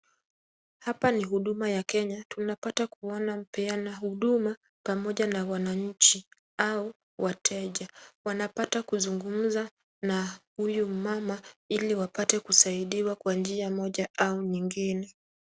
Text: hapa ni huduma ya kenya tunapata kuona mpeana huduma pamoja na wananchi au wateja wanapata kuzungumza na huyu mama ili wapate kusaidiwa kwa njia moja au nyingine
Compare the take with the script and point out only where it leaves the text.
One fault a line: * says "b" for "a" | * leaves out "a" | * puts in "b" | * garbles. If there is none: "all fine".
all fine